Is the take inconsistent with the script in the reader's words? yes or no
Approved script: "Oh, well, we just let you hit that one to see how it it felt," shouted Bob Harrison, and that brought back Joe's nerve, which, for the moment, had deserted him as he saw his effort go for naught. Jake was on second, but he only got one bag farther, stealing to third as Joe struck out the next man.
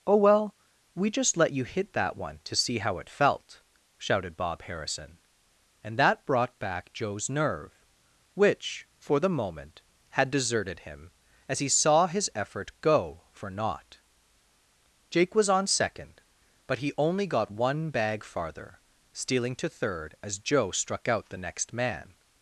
yes